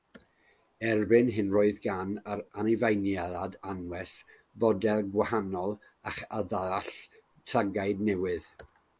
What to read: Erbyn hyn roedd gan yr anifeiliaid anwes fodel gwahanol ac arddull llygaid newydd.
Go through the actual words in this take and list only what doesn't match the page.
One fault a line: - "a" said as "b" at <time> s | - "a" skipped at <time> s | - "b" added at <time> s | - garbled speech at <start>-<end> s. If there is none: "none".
none